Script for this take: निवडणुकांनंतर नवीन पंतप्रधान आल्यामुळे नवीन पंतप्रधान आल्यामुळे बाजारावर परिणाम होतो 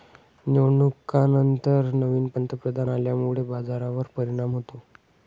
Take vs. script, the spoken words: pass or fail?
fail